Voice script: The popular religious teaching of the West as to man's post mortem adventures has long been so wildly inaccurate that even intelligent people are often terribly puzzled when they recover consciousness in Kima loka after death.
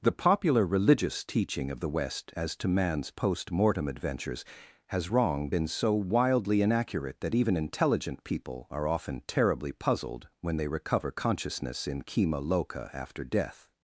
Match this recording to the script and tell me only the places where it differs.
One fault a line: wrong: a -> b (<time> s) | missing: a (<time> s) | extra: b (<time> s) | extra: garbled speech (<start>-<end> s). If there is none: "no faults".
wrong: long -> wrong (5.1 s)